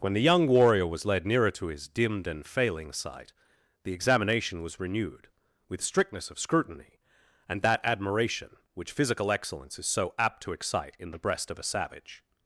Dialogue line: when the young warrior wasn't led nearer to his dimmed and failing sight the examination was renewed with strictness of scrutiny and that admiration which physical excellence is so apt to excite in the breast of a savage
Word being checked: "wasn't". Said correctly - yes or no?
no